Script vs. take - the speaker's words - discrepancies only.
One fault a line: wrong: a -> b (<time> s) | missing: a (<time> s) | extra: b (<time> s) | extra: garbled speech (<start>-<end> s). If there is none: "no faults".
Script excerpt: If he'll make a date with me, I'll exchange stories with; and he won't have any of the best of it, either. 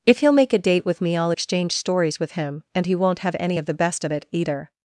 extra: him (2.3 s)